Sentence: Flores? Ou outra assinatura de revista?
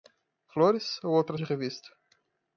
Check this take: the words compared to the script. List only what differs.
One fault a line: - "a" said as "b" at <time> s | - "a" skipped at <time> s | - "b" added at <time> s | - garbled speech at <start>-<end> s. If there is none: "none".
- "assinatura" skipped at 1.4 s